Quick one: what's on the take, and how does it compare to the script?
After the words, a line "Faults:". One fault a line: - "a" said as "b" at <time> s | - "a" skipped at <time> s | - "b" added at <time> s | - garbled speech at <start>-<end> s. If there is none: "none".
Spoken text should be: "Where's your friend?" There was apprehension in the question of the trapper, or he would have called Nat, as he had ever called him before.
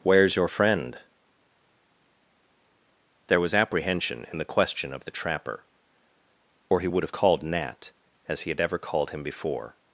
"Where's your friend?" There was apprehension in the question of the trapper, or he would have called Nat, as he had ever called him before.
Faults:
none